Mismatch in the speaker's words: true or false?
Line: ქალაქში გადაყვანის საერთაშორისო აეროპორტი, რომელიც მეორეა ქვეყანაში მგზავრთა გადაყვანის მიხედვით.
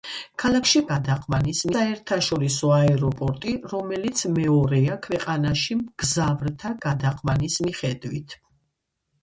false